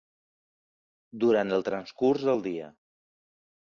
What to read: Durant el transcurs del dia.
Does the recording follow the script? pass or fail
pass